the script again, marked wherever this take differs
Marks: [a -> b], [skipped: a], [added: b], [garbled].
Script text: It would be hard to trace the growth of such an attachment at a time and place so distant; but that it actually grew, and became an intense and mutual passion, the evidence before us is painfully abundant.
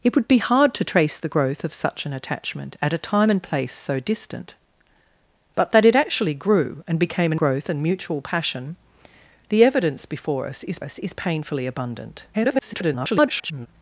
It would be hard to trace the growth of such an attachment at a time and place so distant; but that it actually grew, and became an [intense -> growth] and mutual passion, the evidence before us is [added: us is] painfully abundant. [garbled]